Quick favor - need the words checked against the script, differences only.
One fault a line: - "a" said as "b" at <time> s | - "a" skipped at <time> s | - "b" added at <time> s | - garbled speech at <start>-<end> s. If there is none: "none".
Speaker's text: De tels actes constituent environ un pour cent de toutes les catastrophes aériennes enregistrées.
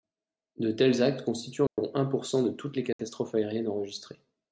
none